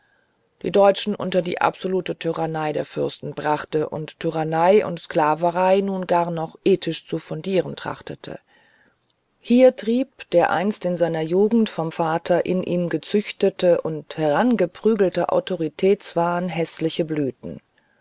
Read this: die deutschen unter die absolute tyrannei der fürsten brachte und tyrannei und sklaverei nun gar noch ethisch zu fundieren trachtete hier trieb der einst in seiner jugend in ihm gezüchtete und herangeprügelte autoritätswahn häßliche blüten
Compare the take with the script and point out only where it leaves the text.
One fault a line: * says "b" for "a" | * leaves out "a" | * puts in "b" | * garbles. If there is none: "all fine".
* puts in "vom vater"